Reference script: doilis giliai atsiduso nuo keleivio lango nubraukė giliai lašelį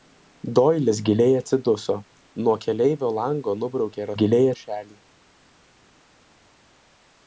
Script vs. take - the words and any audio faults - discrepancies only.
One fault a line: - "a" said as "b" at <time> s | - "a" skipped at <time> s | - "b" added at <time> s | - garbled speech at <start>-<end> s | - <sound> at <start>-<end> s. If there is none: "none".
none